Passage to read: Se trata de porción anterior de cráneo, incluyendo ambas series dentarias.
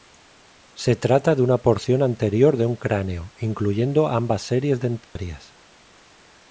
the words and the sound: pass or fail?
fail